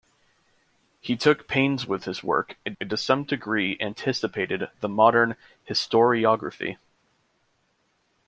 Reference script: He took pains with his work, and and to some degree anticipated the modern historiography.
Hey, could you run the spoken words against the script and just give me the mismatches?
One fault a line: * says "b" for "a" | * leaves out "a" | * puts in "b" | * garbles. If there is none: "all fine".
all fine